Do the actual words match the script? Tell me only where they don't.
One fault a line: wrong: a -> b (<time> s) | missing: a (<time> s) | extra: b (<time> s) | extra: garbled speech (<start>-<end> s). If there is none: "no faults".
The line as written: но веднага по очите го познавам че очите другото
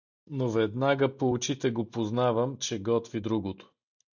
wrong: очите -> готви (2.8 s)